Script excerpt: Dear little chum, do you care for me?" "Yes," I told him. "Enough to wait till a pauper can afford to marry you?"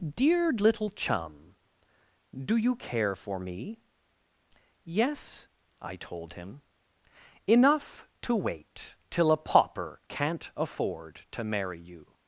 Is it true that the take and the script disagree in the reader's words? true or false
true